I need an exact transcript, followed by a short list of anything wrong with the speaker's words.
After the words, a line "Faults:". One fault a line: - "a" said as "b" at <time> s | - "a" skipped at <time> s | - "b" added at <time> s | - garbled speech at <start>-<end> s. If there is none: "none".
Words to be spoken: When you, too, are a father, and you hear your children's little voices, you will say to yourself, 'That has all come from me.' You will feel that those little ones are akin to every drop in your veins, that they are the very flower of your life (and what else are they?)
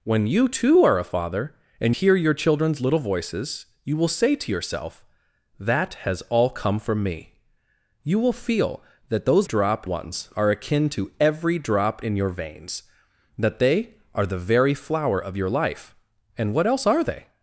When you, too, are a father, and hear your children's little voices, you will say to yourself, 'That has all come from me.' You will feel that those drop ones are akin to every drop in your veins, that they are the very flower of your life (and what else are they?)
Faults:
- "you" skipped at 1.9 s
- "little" said as "drop" at 9.4 s